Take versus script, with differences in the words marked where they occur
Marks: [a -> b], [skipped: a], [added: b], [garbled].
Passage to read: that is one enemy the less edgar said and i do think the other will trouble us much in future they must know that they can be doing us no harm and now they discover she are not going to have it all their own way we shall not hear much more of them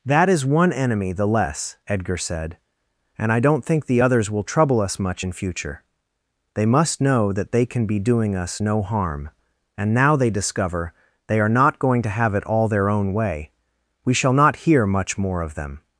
that is one enemy the less edgar said and i [do -> don't] think the [other -> others] will trouble us much in future they must know that they can be doing us no harm and now they discover [she -> they] are not going to have it all their own way we shall not hear much more of them